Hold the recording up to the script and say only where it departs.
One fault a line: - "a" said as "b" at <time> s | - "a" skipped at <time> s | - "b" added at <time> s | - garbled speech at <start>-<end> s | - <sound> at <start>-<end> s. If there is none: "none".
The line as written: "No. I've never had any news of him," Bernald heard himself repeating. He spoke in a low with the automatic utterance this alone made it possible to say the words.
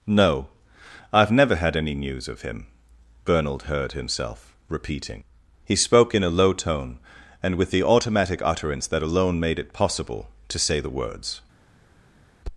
- "tone and" added at 6.5 s
- "this" said as "that" at 8.9 s